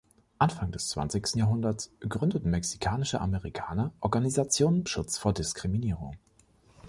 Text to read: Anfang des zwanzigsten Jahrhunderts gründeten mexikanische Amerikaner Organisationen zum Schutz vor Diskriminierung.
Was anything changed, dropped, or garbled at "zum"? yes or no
yes